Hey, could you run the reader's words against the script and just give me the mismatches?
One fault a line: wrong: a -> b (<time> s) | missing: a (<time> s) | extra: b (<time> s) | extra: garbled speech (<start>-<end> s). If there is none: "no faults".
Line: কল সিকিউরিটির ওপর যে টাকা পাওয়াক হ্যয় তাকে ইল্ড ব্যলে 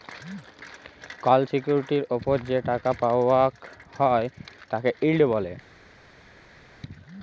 no faults